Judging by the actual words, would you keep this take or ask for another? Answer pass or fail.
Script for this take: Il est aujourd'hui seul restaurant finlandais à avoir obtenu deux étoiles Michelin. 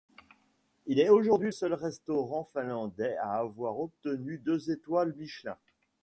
pass